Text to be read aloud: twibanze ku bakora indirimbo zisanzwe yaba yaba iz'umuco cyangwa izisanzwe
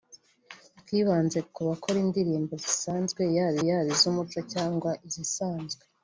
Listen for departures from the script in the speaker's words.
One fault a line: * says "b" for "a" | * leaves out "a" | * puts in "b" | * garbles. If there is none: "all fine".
all fine